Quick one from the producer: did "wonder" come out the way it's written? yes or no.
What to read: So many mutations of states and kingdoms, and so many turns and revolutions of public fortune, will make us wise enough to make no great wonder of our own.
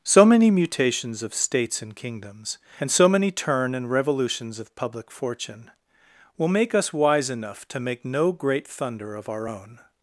no